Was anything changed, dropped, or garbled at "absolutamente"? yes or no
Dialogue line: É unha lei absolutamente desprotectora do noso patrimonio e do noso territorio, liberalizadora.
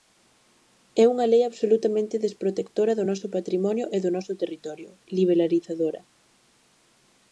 no